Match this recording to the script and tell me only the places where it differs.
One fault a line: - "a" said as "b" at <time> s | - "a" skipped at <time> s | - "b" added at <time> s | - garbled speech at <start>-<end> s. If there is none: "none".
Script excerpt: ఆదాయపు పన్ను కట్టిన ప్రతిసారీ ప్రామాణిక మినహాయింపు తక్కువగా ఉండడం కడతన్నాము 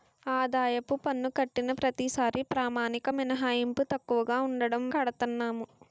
none